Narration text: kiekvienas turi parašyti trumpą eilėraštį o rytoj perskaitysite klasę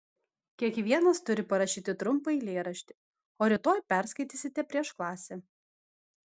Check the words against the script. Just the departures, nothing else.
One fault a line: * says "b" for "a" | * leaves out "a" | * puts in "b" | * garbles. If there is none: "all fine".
* puts in "prieš"